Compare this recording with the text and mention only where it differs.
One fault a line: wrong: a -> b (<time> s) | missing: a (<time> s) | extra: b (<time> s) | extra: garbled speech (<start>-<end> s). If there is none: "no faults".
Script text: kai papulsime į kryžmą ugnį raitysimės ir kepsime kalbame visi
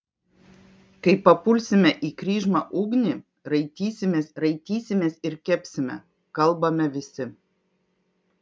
extra: raitysimės (4.4 s)